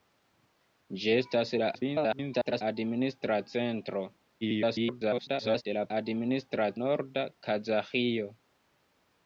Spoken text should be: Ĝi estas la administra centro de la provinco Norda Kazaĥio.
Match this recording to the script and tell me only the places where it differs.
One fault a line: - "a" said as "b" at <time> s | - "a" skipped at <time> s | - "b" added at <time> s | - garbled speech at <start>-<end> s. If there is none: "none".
- garbled speech at 1.7-2.6 s
- garbled speech at 4.4-5.6 s
- "provinco" said as "administra" at 6.0 s